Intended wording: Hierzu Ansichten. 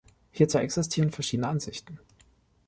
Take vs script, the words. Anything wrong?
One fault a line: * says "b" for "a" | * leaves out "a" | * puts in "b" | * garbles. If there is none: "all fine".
* puts in "existieren verschiedene"